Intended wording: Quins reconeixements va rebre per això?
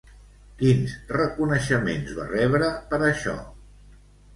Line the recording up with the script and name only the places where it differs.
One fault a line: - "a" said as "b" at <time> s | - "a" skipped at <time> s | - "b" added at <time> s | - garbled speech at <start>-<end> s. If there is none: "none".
none